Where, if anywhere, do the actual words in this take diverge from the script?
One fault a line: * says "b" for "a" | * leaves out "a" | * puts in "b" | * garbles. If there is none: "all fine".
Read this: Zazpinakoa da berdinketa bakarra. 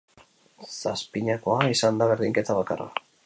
* puts in "izan"